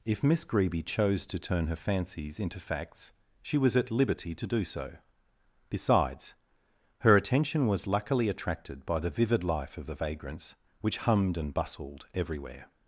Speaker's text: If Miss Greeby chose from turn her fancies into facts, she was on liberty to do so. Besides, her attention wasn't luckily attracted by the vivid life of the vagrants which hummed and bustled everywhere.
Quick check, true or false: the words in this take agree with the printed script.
false